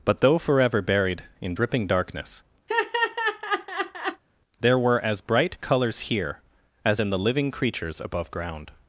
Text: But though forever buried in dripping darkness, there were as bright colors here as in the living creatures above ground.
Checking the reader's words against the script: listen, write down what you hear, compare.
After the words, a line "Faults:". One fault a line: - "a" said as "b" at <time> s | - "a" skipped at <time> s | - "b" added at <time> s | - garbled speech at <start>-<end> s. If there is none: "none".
But though forever buried in dripping darkness, there were as bright colors here as in the living creatures above ground.
Faults:
none